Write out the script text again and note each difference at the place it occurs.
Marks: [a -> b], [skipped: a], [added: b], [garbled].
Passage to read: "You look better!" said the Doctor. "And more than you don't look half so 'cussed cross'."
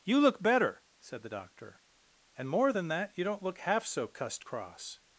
"You look better!" said the Doctor. "And more than [added: that] you don't look half so 'cussed cross'."